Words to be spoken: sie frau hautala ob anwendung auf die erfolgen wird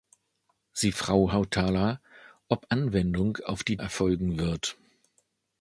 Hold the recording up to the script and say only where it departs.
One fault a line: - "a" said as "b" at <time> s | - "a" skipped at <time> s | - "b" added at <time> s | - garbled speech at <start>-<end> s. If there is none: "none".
none